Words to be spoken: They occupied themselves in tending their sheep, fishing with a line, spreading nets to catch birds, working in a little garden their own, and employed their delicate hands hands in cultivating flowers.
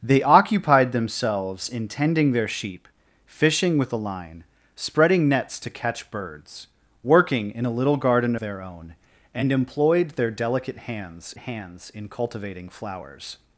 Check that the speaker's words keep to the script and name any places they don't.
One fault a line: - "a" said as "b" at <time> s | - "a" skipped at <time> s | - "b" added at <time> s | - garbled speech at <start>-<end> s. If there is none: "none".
none